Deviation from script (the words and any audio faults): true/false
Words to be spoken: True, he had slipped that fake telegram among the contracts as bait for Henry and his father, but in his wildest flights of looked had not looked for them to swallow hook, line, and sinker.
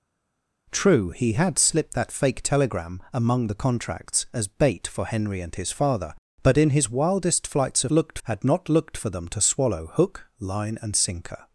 false